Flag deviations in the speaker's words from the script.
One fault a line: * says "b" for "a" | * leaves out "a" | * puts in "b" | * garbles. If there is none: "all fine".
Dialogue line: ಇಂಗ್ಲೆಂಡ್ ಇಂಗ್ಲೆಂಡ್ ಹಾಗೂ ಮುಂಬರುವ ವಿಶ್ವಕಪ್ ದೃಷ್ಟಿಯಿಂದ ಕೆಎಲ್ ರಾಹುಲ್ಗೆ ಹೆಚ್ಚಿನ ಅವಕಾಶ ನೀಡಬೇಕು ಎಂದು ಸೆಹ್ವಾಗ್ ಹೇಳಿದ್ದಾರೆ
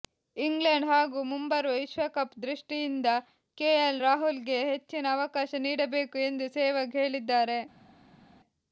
* leaves out "ಇಂಗ್ಲೆಂಡ್"